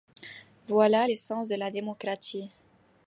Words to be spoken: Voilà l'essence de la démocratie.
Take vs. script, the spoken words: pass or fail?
pass